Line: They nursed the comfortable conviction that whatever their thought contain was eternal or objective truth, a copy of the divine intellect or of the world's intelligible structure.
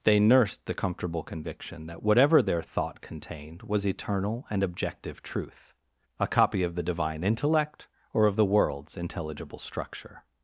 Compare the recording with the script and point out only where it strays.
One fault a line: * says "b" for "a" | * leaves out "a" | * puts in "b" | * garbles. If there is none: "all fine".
* says "contained" for "contain"
* says "and" for "or"